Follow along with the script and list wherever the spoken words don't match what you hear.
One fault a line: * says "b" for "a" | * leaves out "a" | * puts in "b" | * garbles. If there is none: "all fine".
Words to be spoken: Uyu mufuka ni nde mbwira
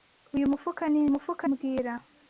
* says "mufuka" for "nde"